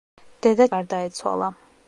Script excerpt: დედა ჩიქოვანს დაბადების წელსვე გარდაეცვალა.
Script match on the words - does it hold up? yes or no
no